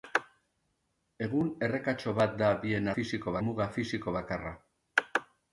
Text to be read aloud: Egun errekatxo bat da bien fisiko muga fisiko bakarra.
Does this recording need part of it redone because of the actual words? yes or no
no